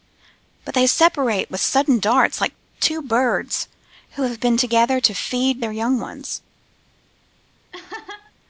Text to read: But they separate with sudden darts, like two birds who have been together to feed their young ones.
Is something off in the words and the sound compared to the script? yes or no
yes